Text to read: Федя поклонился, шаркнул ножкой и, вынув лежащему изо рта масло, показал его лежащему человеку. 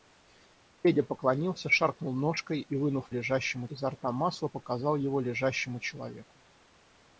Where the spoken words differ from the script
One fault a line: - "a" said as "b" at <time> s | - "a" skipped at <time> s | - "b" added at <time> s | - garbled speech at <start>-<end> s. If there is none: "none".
none